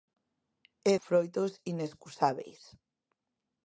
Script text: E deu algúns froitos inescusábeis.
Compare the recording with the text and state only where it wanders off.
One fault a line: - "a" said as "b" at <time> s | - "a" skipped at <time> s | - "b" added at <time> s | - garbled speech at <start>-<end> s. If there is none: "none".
- "deu algúns" skipped at 0.9 s